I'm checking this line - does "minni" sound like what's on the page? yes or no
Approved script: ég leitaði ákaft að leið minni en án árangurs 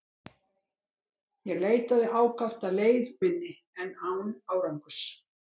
yes